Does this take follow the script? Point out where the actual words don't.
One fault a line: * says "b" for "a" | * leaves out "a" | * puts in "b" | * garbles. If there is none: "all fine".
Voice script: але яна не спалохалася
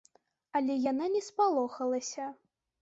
all fine